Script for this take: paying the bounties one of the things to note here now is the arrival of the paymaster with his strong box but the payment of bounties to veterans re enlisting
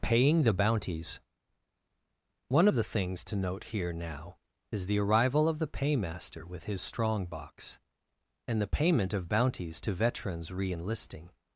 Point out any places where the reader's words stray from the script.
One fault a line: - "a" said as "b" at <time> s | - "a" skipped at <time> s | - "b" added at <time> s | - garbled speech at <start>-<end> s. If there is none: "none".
- "but" said as "and" at 8.5 s